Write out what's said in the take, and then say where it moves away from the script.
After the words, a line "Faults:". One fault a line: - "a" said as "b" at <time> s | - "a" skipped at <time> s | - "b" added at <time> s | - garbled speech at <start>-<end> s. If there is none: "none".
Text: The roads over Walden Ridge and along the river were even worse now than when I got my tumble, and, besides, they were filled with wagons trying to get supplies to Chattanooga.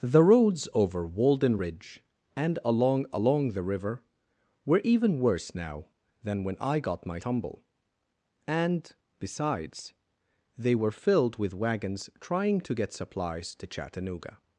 The roads over Walden Ridge and along along the river were even worse now than when I got my tumble, and, besides, they were filled with wagons trying to get supplies to Chattanooga.
Faults:
- "along" added at 3.1 s